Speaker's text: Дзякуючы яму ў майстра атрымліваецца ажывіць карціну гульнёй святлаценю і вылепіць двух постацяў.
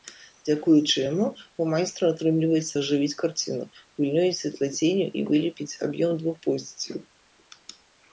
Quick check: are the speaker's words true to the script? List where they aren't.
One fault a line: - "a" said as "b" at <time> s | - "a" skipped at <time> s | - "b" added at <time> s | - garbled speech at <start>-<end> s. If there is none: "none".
- "аб'ём" added at 5.9 s